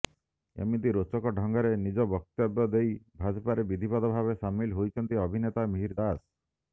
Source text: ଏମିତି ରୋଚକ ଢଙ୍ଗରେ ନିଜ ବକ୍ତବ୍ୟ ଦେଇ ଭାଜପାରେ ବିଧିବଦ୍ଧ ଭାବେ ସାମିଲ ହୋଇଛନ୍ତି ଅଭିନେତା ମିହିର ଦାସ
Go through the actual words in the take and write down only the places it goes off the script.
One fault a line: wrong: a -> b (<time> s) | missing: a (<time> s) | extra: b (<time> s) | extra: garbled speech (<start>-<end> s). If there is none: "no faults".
no faults